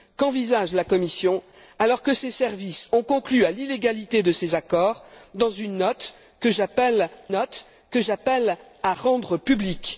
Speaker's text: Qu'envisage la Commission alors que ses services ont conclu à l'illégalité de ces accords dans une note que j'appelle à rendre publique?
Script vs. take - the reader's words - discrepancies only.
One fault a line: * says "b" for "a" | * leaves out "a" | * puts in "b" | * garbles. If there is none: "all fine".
* puts in "note que j'appelle"